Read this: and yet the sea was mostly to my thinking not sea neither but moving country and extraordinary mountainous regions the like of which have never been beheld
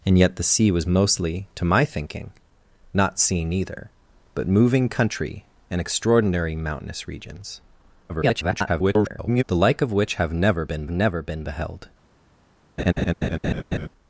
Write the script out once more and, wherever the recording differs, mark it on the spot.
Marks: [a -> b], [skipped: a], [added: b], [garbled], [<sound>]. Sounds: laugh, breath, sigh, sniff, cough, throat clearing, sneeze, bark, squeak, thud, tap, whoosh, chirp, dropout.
and yet the sea was mostly to my thinking not sea neither but moving country and extraordinary mountainous regions [garbled] the like of which have never been [added: never been] beheld [laugh]